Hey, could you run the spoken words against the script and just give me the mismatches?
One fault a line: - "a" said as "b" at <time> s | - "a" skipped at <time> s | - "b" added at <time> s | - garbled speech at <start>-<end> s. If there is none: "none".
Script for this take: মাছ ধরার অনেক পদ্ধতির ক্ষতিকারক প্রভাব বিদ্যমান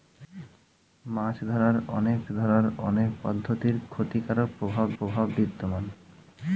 - "ধরার অনেক" added at 2.3 s
- "প্রভাব" added at 5.0 s